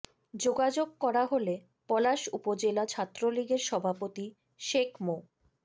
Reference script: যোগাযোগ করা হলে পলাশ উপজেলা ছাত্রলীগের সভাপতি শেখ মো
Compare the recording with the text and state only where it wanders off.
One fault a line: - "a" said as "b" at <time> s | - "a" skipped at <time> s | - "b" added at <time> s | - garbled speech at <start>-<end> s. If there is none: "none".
none